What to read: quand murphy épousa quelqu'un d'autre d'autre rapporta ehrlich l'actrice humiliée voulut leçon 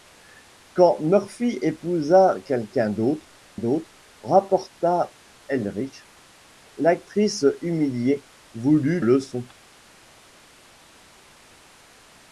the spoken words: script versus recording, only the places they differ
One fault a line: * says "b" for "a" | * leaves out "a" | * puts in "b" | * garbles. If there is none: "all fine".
all fine